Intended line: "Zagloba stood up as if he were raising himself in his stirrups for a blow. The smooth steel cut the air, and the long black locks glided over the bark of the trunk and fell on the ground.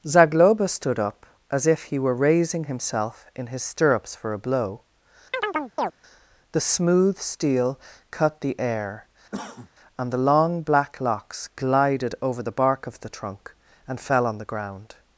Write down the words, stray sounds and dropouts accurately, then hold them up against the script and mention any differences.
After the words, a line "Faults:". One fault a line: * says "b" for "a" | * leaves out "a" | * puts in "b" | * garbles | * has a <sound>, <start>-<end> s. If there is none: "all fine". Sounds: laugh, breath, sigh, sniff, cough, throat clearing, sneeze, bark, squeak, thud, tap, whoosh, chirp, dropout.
"Zagloba stood up as if he were raising himself in his stirrups for a blow. The smooth steel cut the air, and the long black locks glided over the bark of the trunk and fell on the ground.
Faults:
* has a chirp, 5.3-5.9 s
* has a cough, 9.3-9.7 s